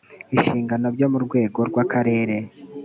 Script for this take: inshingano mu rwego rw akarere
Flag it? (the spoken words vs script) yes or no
yes